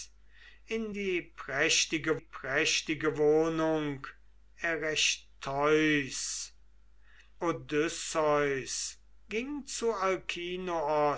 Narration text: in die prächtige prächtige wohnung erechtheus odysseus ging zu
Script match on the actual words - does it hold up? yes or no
yes